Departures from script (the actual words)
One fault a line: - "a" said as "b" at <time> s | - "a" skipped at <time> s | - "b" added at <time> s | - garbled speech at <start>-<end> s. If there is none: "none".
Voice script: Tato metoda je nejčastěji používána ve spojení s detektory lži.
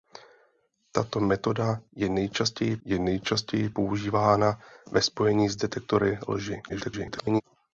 - "je nejčastěji" added at 2.8 s
- garbled speech at 6.7-7.4 s